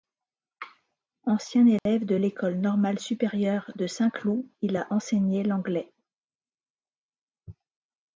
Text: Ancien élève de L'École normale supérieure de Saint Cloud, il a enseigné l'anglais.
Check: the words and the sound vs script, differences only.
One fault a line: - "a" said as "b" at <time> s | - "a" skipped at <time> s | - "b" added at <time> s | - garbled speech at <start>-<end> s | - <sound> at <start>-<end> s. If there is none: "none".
- dropout at 1.8-1.9 s